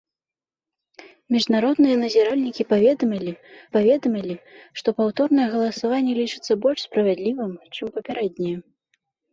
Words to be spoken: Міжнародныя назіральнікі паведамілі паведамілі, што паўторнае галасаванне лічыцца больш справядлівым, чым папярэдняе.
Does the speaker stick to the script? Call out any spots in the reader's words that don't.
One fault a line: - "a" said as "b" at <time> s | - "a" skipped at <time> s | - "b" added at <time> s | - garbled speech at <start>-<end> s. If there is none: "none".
none